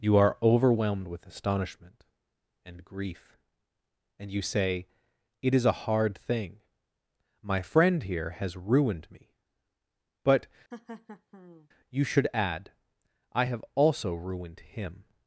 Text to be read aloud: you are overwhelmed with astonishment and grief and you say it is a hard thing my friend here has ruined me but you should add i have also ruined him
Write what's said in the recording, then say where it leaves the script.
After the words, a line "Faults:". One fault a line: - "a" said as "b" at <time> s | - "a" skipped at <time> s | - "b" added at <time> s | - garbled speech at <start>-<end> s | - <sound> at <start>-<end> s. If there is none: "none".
you are overwhelmed with astonishment and grief and you say it is a hard thing my friend here has ruined me but you should add i have also ruined him
Faults:
- laugh at 10.7-11.7 s